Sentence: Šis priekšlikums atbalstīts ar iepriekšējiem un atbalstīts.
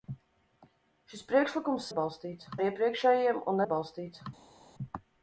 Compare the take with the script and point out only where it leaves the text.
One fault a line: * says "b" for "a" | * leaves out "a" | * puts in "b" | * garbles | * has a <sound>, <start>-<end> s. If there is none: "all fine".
all fine